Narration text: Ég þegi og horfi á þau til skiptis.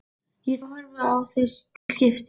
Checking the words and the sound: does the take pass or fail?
fail